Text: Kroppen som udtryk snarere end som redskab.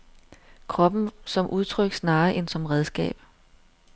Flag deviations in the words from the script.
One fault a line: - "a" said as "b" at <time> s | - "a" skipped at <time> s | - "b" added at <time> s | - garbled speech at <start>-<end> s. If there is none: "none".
none